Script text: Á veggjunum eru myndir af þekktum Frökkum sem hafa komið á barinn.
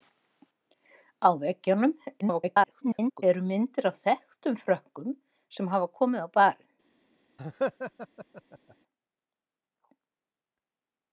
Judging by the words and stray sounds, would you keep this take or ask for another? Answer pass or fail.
fail